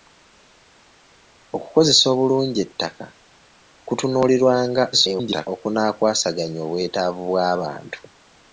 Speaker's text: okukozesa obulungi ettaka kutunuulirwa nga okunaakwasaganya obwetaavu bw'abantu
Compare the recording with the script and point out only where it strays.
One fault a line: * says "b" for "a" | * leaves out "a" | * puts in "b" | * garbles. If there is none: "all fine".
* garbles